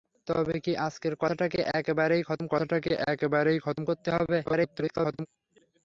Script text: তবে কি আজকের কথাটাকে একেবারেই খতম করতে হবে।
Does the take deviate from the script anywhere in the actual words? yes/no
yes